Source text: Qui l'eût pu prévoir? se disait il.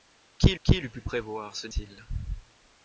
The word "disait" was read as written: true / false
false